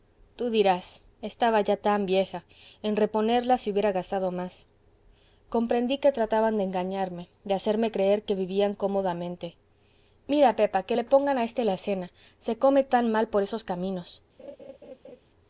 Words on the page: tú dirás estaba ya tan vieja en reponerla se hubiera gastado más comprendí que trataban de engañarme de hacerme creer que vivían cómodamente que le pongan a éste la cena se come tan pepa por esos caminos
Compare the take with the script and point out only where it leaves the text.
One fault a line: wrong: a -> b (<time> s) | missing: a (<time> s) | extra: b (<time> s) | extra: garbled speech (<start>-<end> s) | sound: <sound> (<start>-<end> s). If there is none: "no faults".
extra: mira pepa (10.3 s)
wrong: pepa -> mal (13.1 s)
sound: laugh (14.4-15.2 s)